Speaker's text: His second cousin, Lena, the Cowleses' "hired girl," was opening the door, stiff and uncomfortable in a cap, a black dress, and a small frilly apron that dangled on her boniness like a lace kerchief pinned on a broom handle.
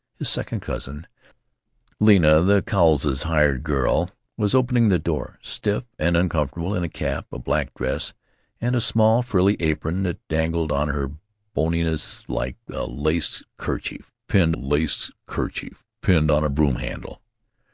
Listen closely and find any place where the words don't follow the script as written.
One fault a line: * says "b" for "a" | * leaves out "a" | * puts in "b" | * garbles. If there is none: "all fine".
* puts in "lace kerchief pinned"